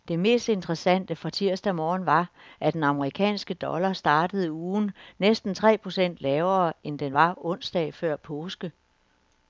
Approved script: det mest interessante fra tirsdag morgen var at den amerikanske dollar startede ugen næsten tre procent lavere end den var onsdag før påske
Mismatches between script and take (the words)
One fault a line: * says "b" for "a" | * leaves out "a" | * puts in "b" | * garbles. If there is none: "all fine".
all fine